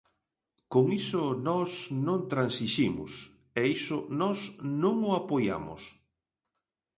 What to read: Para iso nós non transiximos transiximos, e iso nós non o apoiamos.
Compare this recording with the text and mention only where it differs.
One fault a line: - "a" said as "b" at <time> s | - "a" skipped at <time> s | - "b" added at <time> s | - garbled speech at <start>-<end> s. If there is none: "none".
- "Para" said as "Con" at 0.7 s
- "transiximos" skipped at 3.1 s